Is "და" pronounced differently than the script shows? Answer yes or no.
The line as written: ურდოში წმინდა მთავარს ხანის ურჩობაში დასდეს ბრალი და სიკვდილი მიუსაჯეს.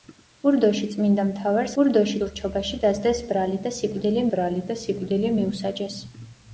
no